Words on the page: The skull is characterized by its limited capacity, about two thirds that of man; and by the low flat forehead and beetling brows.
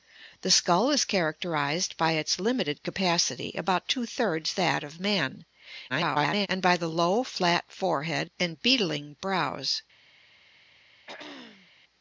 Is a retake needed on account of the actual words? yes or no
yes